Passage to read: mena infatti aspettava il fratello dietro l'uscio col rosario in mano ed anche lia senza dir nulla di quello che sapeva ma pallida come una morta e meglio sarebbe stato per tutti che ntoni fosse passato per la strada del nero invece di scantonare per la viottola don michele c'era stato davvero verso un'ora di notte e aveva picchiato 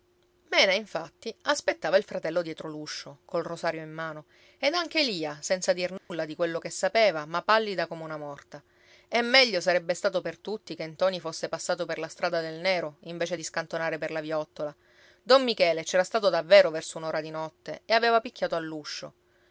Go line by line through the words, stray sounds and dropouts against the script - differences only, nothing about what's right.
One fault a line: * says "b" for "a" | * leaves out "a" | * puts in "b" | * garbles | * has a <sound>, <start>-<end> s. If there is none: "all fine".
* has a dropout, 6.0-6.1 s